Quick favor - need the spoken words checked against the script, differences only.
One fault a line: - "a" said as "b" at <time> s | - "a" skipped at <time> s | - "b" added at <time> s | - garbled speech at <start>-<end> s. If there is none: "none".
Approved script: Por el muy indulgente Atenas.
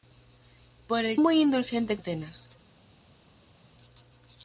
none